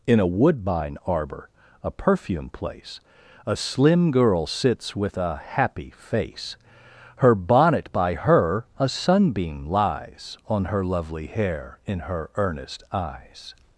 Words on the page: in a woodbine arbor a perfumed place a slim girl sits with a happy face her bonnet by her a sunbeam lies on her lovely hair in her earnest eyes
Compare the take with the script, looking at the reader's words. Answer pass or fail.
fail